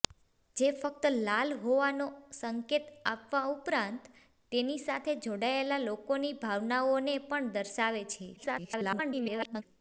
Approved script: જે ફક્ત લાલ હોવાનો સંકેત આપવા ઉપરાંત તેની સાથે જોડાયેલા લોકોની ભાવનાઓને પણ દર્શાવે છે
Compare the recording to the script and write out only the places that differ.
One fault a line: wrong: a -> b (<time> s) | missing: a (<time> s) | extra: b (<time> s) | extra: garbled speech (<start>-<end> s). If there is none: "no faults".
extra: garbled speech (8.4-9.6 s)